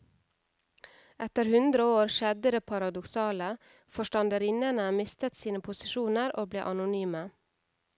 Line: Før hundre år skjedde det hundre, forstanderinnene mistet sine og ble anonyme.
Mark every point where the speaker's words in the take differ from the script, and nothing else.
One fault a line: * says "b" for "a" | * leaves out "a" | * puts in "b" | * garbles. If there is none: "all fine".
* says "Etter" for "Før"
* says "paradoksale" for "hundre"
* puts in "posisjoner"